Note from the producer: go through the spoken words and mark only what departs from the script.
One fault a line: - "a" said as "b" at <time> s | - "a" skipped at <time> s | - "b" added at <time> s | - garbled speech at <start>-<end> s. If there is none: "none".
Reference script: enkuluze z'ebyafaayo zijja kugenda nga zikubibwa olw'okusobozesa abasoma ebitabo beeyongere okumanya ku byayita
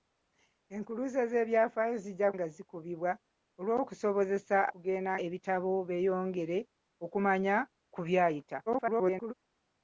- "kugenda" skipped at 2.3 s
- "abasoma" said as "kugenda" at 4.7 s
- garbled speech at 8.7-9.3 s